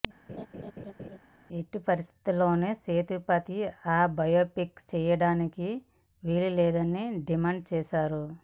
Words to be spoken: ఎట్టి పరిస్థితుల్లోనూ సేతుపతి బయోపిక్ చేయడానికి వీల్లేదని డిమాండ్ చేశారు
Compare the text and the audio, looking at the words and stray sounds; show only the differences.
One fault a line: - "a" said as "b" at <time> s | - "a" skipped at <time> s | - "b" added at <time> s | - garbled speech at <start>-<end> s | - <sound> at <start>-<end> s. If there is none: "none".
- laugh at 0.3-1.2 s
- "ఆ" added at 3.9 s